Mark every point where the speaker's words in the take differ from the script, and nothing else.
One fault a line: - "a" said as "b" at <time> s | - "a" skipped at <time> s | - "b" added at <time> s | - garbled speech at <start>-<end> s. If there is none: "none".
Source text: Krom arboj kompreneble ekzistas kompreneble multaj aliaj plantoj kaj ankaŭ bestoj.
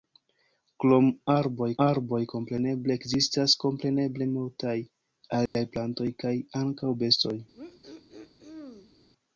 - "arboj" added at 1.8 s